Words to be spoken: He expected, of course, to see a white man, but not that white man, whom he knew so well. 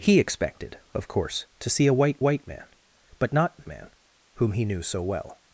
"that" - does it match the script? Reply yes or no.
no